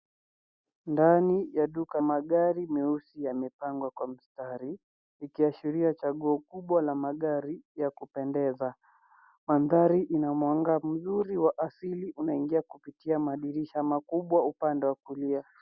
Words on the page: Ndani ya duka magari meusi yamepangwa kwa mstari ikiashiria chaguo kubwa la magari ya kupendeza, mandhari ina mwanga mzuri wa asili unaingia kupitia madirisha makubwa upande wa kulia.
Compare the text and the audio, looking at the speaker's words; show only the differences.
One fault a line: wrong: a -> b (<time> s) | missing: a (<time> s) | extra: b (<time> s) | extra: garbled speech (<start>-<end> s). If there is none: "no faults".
no faults